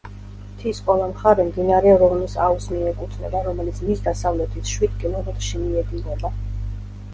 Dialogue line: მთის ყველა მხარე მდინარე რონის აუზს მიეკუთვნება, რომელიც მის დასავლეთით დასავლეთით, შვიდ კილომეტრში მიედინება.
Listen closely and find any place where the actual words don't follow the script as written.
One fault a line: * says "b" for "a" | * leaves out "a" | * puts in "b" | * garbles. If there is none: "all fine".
* leaves out "დასავლეთით"